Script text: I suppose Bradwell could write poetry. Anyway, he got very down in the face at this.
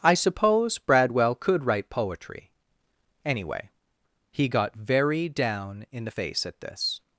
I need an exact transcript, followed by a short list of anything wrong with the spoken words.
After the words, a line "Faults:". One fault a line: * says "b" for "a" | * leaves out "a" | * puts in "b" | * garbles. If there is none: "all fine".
I suppose Bradwell could write poetry. Anyway, he got very down in the face at this.
Faults:
all fine